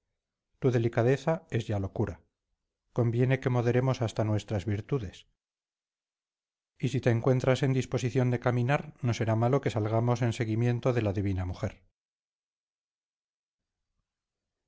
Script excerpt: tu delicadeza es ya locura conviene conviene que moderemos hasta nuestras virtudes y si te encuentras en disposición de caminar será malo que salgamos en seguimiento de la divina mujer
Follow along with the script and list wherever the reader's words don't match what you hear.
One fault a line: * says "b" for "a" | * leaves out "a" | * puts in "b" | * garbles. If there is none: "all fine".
* leaves out "conviene"
* puts in "no"